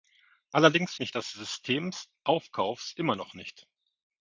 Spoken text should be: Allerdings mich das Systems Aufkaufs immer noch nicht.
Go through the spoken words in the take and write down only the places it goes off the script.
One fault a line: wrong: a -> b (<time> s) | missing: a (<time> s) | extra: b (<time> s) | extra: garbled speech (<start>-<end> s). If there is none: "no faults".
no faults